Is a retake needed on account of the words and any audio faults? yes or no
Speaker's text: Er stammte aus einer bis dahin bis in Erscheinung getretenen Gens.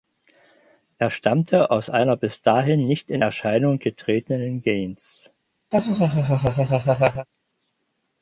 yes